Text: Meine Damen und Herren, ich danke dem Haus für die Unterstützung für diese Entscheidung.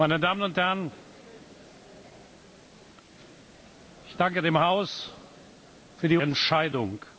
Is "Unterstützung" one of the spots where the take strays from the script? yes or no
yes